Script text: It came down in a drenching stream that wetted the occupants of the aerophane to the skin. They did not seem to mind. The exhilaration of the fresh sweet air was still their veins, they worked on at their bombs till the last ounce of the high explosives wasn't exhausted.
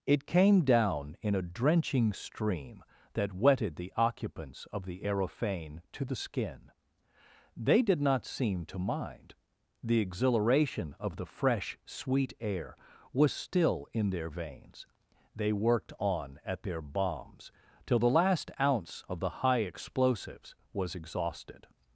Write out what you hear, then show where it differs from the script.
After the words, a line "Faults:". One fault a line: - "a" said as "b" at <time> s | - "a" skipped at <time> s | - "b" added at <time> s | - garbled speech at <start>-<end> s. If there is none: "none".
It came down in a drenching stream that wetted the occupants of the aerophane to the skin. They did not seem to mind. The exhilaration of the fresh sweet air was still in their veins, they worked on at their bombs till the last ounce of the high explosives was exhausted.
Faults:
- "in" added at 13.9 s
- "wasn't" said as "was" at 20.7 s